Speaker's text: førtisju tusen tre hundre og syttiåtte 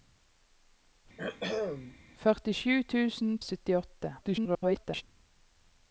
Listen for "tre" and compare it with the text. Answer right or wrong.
wrong